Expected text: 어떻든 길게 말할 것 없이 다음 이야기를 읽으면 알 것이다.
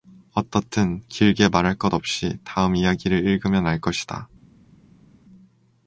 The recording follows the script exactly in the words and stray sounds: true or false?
true